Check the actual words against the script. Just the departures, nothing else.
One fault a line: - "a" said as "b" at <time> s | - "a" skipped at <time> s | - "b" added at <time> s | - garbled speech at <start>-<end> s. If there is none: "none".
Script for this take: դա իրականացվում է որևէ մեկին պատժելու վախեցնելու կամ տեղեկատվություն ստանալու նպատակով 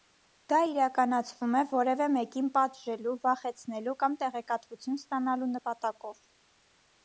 none